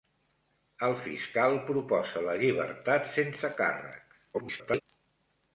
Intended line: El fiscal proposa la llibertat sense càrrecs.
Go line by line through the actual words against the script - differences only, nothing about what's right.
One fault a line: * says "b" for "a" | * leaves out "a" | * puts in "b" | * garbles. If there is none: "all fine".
* garbles